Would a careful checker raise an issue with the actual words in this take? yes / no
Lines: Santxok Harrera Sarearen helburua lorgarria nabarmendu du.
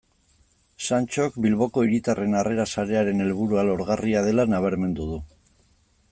yes